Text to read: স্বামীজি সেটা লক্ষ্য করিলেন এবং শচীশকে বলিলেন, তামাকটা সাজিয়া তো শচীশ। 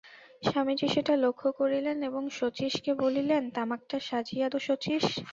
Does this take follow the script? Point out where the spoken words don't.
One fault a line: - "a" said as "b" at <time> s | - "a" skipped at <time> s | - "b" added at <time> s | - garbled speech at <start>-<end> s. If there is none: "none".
none